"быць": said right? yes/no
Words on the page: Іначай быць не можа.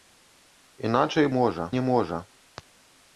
no